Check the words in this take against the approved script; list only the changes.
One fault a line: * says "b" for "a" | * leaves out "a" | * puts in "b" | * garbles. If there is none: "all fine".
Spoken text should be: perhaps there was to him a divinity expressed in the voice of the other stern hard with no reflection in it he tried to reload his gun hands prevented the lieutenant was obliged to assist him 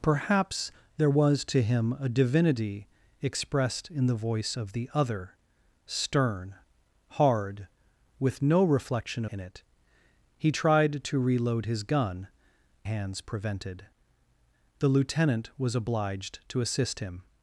all fine